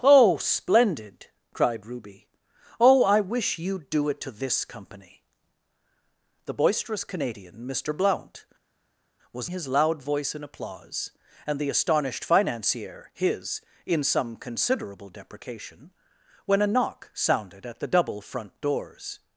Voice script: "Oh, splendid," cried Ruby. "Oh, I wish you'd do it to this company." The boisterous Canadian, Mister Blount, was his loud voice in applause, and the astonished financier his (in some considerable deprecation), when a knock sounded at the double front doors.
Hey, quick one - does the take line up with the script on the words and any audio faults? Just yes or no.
yes